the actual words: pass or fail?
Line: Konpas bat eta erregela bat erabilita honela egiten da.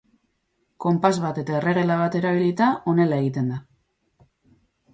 pass